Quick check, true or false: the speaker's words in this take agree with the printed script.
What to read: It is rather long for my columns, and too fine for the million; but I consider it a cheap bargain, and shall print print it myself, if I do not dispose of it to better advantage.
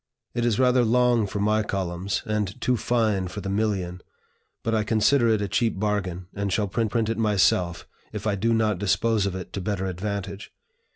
true